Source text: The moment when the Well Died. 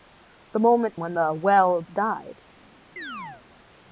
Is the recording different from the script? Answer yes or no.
no